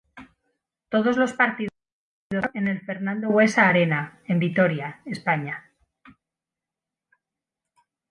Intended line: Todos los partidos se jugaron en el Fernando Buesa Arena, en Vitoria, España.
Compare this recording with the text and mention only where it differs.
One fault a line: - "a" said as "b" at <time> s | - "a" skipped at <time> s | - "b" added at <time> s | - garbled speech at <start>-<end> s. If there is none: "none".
none